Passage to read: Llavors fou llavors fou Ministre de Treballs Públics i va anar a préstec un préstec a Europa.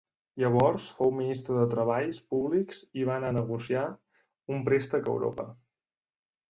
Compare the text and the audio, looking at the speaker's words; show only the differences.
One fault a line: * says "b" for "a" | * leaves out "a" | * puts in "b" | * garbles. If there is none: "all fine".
* leaves out "llavors fou"
* says "negociar" for "préstec"